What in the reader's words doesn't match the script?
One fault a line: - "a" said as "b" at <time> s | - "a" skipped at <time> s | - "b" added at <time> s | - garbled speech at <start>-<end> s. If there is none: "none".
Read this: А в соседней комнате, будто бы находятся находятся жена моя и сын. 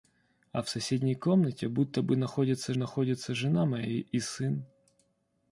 none